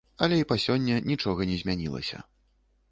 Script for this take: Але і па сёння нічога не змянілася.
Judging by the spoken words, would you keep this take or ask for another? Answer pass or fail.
pass